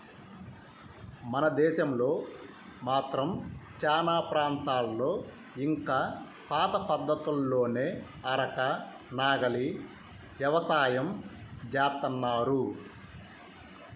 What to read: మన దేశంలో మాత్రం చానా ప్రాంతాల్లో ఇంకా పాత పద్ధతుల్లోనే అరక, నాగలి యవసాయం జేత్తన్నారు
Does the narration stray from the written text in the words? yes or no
no